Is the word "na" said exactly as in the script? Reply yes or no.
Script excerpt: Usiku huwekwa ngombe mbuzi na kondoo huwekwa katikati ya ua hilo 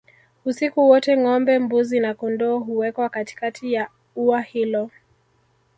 yes